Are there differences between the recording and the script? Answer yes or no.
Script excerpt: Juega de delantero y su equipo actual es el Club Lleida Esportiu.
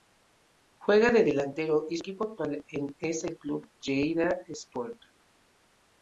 yes